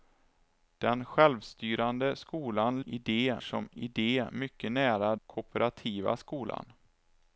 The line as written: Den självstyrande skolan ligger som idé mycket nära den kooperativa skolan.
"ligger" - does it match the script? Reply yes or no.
no